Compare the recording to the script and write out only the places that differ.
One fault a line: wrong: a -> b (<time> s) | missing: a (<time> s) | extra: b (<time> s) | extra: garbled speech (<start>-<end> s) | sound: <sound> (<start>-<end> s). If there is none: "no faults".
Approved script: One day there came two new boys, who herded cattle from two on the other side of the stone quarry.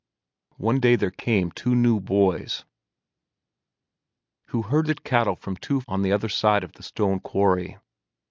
no faults